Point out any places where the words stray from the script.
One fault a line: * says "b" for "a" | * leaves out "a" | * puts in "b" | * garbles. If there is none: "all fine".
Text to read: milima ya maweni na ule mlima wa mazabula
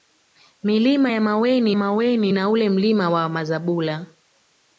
* puts in "maweni"